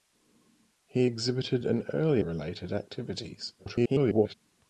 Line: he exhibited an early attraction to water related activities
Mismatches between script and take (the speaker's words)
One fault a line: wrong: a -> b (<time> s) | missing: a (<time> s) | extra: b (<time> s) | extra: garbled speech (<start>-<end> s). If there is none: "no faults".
missing: attraction to water (2.2 s)
extra: garbled speech (3.6-4.4 s)